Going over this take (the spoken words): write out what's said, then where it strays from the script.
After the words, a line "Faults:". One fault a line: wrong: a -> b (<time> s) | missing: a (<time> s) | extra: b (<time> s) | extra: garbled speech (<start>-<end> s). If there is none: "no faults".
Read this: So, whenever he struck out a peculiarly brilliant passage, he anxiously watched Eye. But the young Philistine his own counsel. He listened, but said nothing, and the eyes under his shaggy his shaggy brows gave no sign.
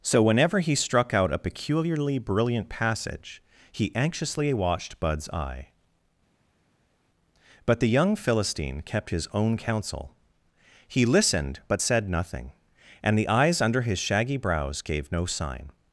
So, whenever he struck out a peculiarly brilliant passage, he anxiously watched Bud's eye. But the young Philistine kept his own counsel. He listened, but said nothing, and the eyes under his shaggy brows gave no sign.
Faults:
extra: Bud's (5.0 s)
extra: kept (8.8 s)
missing: his shaggy (14.4 s)